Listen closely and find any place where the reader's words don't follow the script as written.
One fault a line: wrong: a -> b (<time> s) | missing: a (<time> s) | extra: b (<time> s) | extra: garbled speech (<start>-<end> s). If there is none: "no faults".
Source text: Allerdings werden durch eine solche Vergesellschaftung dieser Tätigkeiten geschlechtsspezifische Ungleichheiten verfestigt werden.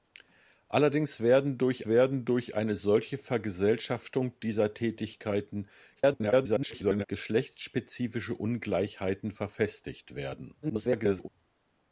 extra: werden durch (1.8 s)
extra: garbled speech (6.0-7.1 s)
extra: garbled speech (10.6-11.3 s)